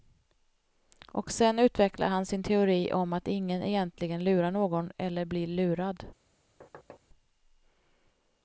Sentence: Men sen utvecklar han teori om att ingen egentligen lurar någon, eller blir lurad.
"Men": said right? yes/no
no